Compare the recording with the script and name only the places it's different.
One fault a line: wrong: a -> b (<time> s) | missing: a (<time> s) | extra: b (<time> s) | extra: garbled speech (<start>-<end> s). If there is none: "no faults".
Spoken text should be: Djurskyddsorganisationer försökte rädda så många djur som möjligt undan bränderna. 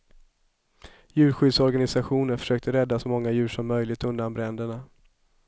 no faults